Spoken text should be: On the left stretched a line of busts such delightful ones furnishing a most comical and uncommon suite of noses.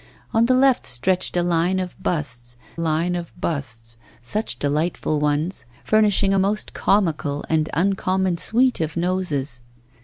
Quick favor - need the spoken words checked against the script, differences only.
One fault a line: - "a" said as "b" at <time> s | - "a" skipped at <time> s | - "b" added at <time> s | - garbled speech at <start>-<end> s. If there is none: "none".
- "line of busts" added at 2.8 s